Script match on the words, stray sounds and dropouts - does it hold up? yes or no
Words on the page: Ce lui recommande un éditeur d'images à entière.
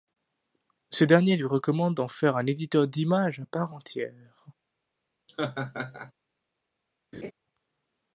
no